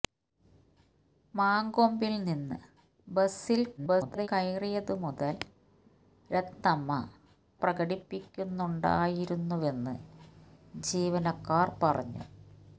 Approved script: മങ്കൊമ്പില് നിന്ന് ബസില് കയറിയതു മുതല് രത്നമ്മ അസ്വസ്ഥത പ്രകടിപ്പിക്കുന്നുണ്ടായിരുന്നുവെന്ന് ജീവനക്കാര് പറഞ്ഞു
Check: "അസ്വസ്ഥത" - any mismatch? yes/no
yes